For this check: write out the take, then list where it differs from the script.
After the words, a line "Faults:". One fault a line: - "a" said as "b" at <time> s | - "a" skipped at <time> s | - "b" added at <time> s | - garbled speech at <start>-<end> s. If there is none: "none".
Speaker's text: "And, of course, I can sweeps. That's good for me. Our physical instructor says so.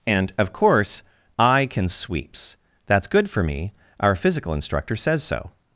"And, of course, I can sweeps. That's good for me. Our physical instructor says so.
Faults:
none